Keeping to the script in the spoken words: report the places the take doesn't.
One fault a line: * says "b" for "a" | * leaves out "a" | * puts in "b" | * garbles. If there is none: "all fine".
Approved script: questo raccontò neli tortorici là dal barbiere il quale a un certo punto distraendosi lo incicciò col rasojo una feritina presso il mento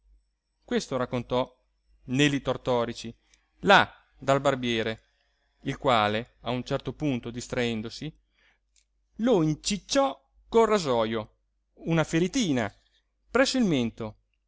all fine